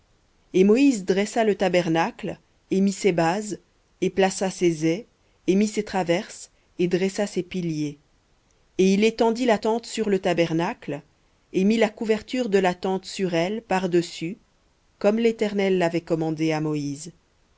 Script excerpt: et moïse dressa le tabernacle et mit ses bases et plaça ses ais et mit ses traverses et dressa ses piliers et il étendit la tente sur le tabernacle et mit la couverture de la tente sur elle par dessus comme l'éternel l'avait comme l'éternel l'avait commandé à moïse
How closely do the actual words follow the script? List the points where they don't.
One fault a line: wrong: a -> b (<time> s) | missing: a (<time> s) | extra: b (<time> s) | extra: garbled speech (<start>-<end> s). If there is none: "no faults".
missing: comme l'éternel l'avait (16.0 s)